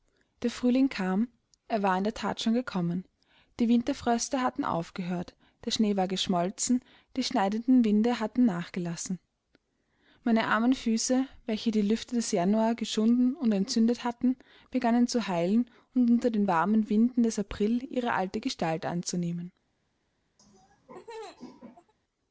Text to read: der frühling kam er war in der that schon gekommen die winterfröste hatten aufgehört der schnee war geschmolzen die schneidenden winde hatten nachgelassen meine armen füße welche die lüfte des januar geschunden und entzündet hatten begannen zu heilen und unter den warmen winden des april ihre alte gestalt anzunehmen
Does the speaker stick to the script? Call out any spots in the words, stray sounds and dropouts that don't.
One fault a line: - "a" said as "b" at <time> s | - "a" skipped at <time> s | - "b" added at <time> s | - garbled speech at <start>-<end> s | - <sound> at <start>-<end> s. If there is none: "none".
- laugh at 20.4-21.9 s